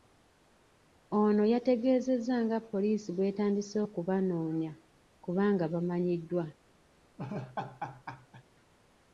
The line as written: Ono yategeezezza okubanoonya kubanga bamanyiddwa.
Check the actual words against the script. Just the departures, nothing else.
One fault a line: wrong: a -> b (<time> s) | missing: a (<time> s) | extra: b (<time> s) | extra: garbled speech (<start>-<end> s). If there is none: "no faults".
extra: nga poliisi bw'etandise (2.5 s)